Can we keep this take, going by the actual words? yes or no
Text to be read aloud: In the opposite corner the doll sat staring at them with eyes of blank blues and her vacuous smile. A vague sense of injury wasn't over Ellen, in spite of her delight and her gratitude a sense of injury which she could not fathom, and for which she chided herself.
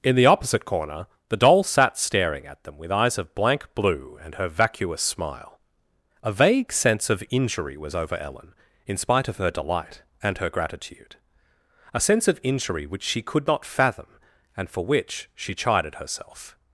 no